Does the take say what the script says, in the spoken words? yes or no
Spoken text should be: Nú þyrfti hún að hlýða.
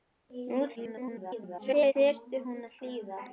no